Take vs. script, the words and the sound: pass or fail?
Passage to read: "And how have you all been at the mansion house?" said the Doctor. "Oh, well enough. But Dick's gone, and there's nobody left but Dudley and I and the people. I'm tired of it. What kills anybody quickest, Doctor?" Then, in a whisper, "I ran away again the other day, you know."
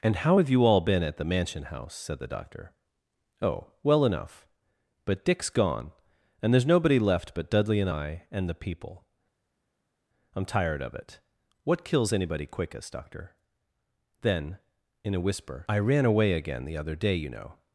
pass